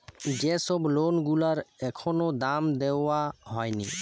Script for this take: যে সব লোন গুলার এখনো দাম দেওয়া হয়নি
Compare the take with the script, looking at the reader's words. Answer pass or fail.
pass